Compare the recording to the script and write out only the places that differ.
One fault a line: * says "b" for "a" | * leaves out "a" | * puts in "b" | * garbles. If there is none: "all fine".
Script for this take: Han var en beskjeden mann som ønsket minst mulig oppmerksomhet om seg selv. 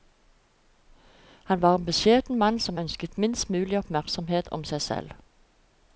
all fine